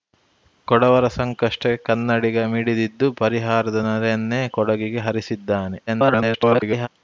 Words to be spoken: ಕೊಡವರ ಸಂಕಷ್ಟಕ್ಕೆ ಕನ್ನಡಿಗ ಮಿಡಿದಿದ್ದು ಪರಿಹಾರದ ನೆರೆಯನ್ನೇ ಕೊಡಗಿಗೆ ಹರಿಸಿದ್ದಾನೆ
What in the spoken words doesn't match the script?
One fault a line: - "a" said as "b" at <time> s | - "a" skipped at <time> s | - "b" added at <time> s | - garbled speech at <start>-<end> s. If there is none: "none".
- garbled speech at 5.9-6.9 s